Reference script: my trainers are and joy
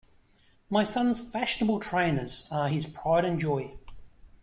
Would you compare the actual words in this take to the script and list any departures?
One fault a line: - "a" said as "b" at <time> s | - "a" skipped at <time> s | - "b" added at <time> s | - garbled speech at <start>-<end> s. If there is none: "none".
- "son's fashionable" added at 0.8 s
- "his pride" added at 2.7 s